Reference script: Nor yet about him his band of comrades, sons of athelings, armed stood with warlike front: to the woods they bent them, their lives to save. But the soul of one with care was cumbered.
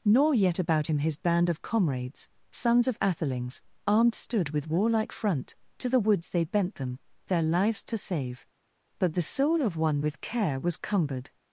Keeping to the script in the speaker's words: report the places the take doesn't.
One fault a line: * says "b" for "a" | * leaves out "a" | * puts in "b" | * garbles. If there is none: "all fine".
all fine